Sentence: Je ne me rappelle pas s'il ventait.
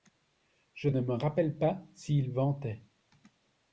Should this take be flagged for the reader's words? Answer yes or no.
no